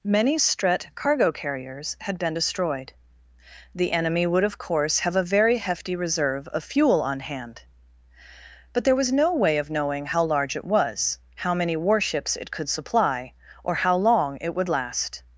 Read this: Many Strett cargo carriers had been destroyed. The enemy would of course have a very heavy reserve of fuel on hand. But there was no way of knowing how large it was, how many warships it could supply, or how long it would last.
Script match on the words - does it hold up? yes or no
no